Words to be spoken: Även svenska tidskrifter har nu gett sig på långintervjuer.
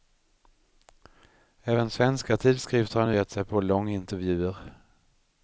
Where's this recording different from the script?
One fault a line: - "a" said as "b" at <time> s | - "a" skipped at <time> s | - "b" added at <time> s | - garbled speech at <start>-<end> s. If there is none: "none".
none